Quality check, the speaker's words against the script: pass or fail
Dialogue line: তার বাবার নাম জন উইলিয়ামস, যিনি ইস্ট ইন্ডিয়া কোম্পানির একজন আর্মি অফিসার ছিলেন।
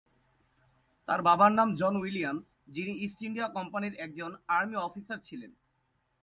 pass